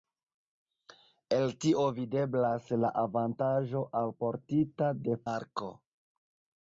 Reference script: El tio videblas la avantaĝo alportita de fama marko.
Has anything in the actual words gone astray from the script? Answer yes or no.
yes